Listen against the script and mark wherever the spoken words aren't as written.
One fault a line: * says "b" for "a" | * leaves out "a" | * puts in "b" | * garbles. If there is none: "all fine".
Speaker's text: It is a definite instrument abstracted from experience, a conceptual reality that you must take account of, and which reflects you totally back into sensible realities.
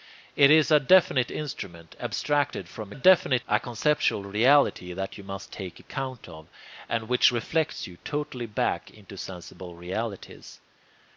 * says "definite" for "experience"